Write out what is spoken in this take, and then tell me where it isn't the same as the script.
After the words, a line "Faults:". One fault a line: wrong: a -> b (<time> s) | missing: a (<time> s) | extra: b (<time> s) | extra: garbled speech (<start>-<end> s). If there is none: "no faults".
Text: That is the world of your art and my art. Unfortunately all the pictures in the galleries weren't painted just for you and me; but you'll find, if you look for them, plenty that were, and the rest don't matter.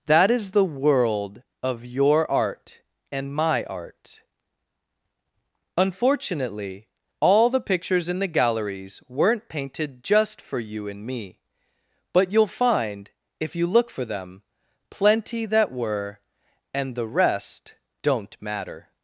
That is the world of your art and my art. Unfortunately all the pictures in the galleries weren't painted just for you and me; but you'll find, if you look for them, plenty that were, and the rest don't matter.
Faults:
no faults